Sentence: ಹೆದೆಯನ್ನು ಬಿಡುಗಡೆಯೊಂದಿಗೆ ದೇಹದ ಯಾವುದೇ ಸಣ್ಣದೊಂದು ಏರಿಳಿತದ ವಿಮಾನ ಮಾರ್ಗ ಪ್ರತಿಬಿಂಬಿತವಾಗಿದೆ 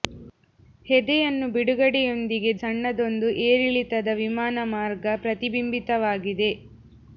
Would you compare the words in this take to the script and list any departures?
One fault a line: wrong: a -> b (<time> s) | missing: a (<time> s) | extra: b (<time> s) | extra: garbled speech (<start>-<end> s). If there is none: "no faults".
missing: ದೇಹದ ಯಾವುದೇ (2.5 s)